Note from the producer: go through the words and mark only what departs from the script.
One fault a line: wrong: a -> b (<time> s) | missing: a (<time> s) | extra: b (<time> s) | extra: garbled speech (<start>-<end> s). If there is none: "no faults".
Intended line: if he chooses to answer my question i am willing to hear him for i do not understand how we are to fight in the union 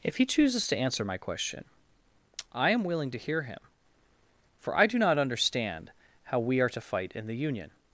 no faults